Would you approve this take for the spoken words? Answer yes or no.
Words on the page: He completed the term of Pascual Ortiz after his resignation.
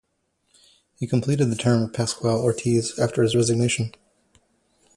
yes